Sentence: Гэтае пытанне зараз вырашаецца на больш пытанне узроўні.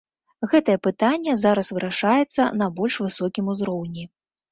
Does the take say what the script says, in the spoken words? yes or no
no